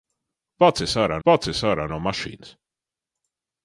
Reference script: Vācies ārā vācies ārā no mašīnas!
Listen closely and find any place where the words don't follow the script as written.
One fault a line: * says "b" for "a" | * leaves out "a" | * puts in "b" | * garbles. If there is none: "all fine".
all fine